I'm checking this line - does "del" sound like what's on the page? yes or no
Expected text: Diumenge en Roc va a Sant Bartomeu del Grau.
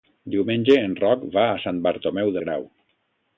no